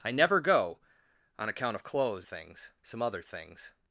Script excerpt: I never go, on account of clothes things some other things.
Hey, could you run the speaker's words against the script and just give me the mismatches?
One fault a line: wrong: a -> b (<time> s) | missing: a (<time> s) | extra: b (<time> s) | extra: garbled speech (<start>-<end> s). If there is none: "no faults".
no faults